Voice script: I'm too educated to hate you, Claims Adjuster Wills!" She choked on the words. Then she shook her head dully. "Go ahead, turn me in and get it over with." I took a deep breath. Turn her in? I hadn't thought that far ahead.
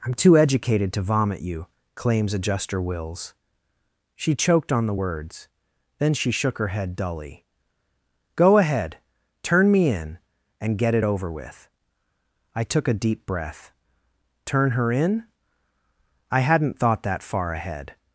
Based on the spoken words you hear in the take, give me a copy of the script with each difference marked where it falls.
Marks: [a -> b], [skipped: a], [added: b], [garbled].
I'm too educated to [hate -> vomit] you, Claims Adjuster Wills!" She choked on the words. Then she shook her head dully. "Go ahead, turn me in and get it over with." I took a deep breath. Turn her in? I hadn't thought that far ahead.